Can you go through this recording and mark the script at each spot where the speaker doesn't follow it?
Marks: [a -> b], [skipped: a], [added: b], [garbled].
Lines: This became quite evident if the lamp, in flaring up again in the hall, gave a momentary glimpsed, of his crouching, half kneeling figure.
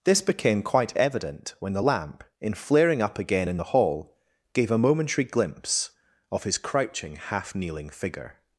This became quite evident [if -> when] the lamp, in flaring up again in the hall, gave a momentary [glimpsed, -> glimpse] of his crouching, half kneeling figure.